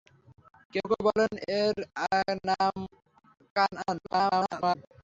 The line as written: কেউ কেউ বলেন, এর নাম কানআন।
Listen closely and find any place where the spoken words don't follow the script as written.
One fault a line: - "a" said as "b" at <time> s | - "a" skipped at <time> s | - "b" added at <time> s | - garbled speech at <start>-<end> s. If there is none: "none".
- garbled speech at 4.0-4.8 s